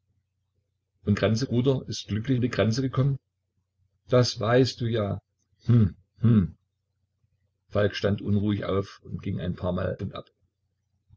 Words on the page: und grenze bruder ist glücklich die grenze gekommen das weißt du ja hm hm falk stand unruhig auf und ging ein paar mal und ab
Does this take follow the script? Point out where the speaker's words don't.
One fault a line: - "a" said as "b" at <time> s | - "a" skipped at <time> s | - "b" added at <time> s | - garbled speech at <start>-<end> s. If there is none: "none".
none